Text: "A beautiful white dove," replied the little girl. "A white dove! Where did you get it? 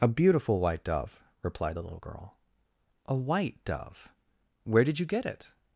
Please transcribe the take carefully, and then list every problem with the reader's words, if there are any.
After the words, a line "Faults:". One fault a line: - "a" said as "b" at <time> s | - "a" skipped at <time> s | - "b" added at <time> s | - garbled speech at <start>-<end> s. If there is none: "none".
"A beautiful white dove," replied the little girl. "A white dove! Where did you get it?
Faults:
none